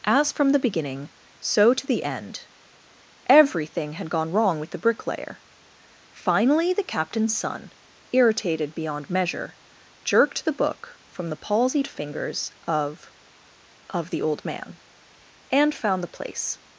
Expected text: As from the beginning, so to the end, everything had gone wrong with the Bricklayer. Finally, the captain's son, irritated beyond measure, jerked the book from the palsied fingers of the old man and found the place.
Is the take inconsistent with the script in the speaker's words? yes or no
yes